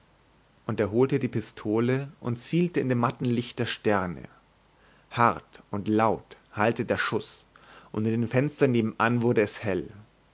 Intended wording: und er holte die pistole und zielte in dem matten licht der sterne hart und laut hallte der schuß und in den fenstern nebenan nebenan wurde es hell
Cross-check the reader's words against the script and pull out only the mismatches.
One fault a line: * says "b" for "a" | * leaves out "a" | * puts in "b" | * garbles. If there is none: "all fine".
* leaves out "nebenan"